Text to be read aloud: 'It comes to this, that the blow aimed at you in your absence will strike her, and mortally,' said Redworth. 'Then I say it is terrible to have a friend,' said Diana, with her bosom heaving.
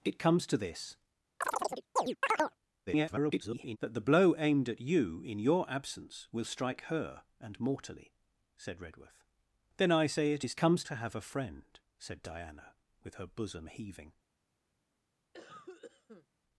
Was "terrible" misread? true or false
true